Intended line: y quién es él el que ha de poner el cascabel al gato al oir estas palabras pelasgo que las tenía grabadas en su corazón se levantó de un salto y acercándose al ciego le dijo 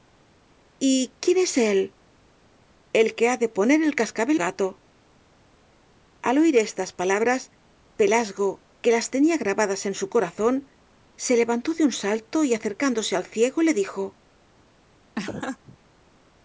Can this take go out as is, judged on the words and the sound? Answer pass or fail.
fail